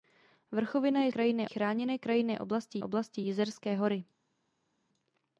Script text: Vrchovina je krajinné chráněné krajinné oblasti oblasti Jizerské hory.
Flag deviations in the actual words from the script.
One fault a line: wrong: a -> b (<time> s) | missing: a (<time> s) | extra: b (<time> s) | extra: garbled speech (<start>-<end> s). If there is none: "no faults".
no faults